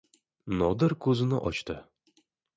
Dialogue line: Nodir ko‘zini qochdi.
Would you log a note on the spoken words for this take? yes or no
no